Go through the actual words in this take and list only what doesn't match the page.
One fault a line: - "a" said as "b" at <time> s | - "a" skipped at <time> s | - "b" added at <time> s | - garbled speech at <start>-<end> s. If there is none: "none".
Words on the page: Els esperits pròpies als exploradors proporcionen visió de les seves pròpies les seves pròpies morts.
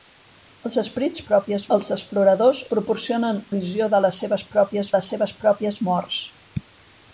none